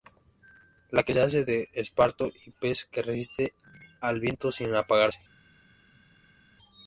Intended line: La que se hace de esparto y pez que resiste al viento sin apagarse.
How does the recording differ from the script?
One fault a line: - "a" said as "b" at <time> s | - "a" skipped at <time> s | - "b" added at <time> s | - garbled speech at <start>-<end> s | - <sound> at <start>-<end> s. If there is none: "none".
none